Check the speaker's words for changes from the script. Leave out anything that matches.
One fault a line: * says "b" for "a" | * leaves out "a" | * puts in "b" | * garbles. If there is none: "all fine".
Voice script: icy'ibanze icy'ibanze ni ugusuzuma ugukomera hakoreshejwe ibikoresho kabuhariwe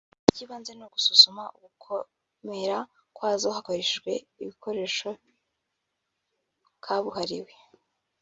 * leaves out "icy'ibanze"
* puts in "kwazo"